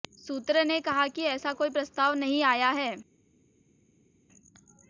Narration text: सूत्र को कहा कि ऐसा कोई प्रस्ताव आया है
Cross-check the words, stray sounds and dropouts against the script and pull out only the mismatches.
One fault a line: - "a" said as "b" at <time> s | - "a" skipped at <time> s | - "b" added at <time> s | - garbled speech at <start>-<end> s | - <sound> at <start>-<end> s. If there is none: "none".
- "को" said as "ने" at 0.6 s
- "नहीं" added at 2.1 s